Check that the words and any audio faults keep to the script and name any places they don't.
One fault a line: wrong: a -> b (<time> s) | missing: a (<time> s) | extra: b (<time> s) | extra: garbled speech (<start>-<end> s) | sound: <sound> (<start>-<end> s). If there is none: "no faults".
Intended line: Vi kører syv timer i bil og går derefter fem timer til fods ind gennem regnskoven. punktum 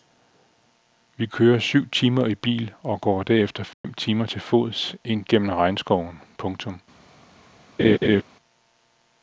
sound: dropout (3.7-3.8 s)
sound: laugh (7.8-8.2 s)